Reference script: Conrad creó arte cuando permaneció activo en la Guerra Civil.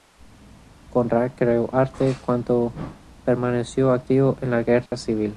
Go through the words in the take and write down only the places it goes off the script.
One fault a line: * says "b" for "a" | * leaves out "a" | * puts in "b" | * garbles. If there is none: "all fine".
all fine